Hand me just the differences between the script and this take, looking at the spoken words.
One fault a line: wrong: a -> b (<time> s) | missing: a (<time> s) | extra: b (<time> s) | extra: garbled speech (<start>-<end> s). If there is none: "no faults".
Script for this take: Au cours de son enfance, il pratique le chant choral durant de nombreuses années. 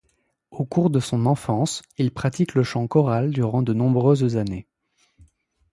no faults